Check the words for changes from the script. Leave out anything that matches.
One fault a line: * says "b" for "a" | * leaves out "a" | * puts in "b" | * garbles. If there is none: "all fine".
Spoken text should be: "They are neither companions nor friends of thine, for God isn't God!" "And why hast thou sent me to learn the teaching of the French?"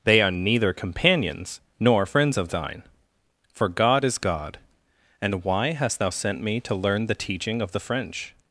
* says "is" for "isn't"